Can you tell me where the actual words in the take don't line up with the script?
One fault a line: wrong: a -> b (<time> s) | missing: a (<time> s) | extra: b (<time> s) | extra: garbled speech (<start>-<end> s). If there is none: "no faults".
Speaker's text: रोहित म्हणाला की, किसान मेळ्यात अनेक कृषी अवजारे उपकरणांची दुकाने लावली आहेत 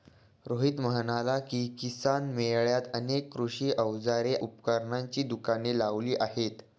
no faults